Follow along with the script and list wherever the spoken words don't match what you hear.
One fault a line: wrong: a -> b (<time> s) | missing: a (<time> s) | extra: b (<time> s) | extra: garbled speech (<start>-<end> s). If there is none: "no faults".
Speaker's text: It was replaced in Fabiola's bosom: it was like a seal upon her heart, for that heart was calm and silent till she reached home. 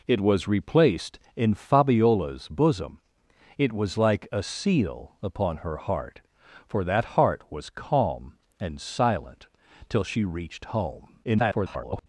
extra: garbled speech (11.2-12.1 s)